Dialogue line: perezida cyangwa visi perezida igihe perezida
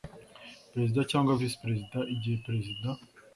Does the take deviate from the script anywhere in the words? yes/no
no